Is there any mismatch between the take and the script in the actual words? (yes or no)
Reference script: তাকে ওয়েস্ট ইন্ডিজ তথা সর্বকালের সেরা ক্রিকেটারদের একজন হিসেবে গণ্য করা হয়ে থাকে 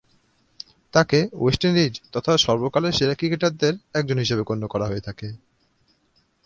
no